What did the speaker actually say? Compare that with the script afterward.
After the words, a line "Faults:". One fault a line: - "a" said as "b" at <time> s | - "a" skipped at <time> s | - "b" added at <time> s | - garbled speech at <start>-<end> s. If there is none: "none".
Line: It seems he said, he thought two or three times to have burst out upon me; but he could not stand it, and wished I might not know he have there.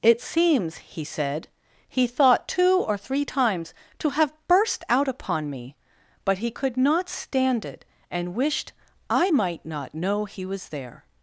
It seems he said, he thought two or three times to have burst out upon me; but he could not stand it, and wished I might not know he was there.
Faults:
- "have" said as "was" at 10.4 s